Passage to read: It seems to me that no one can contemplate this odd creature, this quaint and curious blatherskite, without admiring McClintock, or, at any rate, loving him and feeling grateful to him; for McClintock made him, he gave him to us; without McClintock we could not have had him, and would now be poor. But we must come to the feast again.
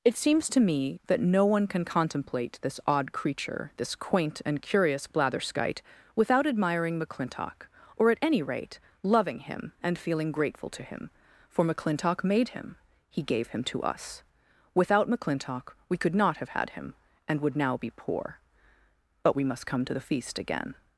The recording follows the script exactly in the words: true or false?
true